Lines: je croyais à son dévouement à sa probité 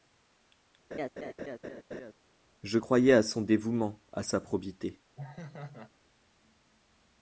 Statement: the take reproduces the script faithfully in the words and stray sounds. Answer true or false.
false